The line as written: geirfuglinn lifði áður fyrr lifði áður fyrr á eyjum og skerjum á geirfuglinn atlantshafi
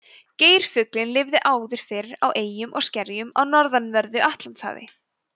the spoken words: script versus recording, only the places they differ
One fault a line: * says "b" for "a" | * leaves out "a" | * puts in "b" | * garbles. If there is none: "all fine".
* leaves out "lifði áður fyrr"
* says "norðanverðu" for "geirfuglinn"